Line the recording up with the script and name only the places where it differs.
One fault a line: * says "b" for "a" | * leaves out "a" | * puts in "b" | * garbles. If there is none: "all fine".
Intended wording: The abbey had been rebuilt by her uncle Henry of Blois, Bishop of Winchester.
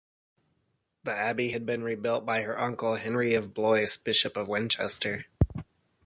all fine